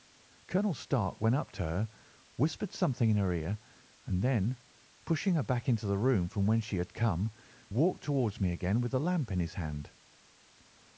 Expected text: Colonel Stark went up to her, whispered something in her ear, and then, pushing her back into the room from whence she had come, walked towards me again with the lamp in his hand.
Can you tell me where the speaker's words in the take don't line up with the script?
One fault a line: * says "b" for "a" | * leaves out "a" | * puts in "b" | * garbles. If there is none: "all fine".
all fine